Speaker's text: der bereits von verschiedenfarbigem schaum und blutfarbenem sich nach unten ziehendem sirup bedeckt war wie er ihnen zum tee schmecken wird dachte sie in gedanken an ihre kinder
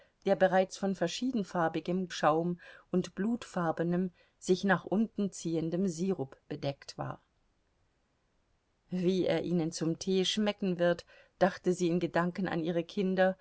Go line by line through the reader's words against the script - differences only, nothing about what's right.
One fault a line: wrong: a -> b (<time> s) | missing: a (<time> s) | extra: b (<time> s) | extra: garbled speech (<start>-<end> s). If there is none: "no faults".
no faults